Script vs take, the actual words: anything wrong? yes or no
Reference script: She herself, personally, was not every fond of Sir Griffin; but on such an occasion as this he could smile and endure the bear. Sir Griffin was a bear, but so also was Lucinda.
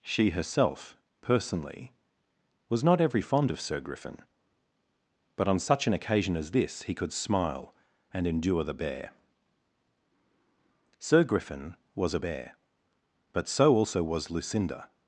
no